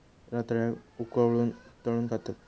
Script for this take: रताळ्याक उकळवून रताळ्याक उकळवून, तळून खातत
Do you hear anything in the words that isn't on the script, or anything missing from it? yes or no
yes